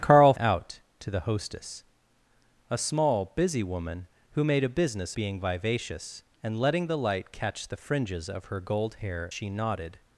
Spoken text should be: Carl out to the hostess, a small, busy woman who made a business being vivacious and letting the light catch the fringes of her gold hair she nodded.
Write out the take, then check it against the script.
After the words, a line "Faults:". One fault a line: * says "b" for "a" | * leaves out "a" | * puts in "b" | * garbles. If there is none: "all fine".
Carl out to the hostess, a small, busy woman who made a business being vivacious and letting the light catch the fringes of her gold hair she nodded.
Faults:
all fine